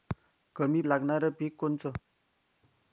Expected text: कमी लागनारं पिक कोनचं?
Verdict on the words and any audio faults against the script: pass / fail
pass